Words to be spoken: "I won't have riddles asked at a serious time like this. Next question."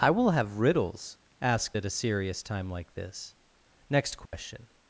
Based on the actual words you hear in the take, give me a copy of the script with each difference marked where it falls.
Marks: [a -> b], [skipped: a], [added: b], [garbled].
"I [won't -> will] have riddles asked at a serious time like this. Next question."